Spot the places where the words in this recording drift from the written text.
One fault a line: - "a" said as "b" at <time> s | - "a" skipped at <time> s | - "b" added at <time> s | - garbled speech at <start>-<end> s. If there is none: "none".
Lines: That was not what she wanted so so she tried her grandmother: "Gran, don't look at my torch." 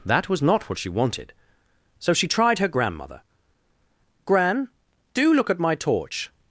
- "so" skipped at 2.1 s
- "don't" said as "do" at 5.1 s